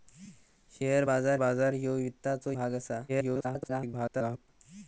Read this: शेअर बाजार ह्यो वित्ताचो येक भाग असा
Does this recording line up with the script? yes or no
no